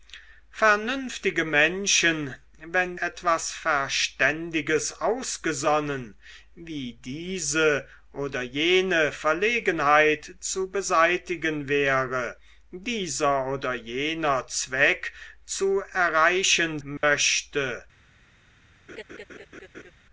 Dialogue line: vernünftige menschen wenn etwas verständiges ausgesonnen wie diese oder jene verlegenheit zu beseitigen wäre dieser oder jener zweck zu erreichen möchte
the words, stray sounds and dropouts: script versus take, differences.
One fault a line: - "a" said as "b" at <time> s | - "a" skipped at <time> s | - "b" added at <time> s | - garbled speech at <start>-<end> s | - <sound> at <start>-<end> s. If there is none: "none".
- dropout at 17.0-17.0 s
- laugh at 18.9-19.9 s